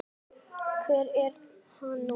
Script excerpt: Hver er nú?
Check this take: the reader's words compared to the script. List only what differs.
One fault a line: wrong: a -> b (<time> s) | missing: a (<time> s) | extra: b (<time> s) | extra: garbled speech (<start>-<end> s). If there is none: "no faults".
extra: hann (1.8 s)